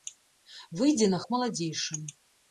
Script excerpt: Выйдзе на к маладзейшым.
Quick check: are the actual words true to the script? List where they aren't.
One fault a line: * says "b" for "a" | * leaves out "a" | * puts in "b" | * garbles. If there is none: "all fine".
all fine